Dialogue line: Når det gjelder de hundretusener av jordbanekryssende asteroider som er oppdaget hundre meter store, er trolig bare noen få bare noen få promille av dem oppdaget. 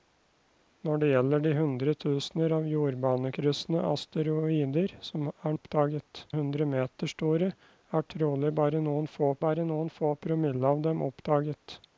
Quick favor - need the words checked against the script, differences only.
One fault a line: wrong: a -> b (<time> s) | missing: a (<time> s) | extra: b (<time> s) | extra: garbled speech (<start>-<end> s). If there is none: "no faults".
no faults